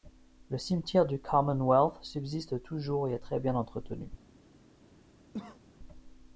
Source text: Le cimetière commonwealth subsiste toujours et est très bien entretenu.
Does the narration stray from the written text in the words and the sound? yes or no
yes